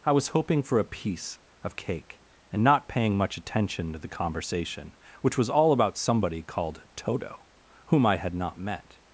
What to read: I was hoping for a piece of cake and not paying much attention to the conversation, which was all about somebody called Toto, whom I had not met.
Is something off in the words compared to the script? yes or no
no